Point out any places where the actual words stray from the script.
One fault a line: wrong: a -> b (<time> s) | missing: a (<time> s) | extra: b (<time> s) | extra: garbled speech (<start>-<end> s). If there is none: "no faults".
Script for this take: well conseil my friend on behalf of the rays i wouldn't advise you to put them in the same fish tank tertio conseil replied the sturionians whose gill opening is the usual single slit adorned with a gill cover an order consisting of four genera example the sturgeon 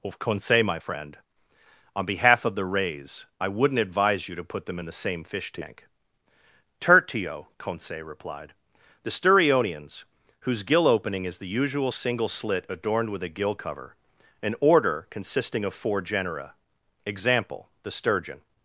wrong: well -> of (0.0 s)